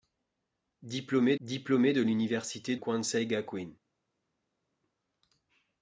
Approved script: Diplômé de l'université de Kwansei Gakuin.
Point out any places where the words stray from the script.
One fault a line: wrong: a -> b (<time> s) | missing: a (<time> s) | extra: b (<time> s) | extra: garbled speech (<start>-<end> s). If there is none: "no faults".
extra: diplômé (1.4 s)
missing: de (2.8 s)